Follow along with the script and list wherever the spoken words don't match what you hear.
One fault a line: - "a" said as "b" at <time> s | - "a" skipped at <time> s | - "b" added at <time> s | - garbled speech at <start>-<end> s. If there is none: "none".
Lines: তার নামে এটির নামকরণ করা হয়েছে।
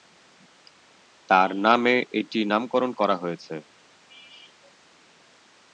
none